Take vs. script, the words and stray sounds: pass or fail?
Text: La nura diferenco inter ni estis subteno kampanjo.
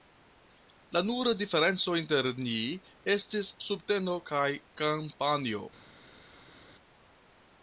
fail